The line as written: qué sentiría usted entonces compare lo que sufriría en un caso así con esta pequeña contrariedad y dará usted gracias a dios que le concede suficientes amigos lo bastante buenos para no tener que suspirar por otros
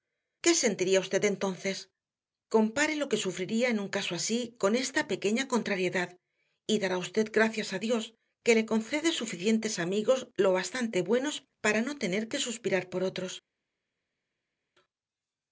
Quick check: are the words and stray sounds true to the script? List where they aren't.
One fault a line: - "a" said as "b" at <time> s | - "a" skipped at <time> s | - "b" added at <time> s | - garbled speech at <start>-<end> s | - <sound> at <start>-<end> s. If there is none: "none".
none